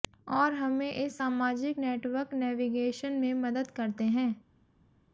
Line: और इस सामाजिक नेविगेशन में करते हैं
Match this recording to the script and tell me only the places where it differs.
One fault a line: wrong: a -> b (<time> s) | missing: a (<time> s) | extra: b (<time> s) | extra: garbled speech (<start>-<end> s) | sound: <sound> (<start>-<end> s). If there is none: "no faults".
extra: हमें (0.5 s)
extra: नेटवर्क (1.8 s)
extra: मदद (3.3 s)